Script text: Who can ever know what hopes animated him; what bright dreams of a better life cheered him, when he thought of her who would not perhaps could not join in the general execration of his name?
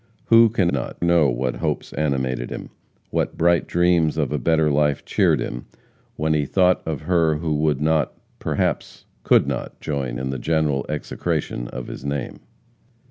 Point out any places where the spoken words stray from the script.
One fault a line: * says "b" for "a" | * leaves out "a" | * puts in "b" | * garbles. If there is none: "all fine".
* says "not" for "ever"